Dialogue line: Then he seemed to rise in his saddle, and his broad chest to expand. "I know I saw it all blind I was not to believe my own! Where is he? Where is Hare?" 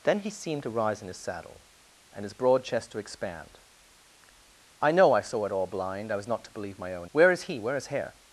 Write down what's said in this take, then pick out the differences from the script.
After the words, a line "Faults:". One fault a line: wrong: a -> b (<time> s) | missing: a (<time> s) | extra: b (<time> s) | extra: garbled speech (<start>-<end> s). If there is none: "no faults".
Then he seemed to rise in his saddle, and his broad chest to expand. "I know I saw it all blind I was not to believe my own! Where is he? Where is Hare?"
Faults:
no faults